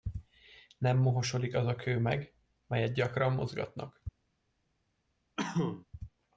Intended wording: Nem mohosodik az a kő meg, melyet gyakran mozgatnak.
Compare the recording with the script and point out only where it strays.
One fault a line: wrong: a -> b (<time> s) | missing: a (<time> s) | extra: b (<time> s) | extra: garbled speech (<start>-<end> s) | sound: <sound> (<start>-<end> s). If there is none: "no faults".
sound: cough (5.4-5.9 s)